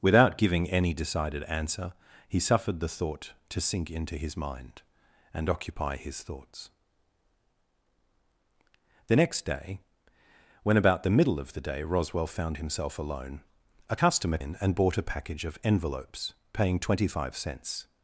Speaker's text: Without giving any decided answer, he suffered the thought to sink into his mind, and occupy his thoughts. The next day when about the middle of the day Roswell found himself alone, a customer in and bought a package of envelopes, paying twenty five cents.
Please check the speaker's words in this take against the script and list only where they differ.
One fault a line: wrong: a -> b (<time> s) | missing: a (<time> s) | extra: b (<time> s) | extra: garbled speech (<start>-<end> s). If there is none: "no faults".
no faults